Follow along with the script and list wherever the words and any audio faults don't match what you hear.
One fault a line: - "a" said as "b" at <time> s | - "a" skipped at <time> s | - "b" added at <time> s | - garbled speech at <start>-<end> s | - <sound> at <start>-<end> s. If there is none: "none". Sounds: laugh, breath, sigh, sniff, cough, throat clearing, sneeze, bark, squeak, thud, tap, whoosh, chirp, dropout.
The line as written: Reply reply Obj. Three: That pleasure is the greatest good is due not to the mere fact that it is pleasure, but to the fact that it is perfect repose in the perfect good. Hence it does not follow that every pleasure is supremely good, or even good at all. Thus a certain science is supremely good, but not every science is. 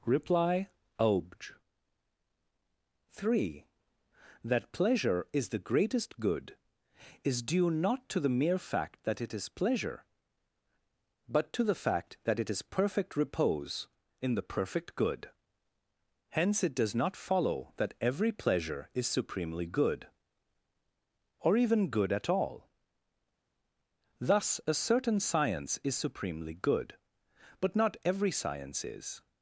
- "reply" skipped at 0.7 s